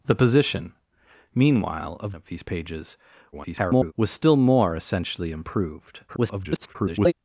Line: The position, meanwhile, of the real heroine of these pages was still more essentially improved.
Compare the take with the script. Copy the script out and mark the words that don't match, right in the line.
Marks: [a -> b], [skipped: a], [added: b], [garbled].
The position, meanwhile, of [skipped: the real heroine] of these pages [garbled] was still more essentially improved. [garbled]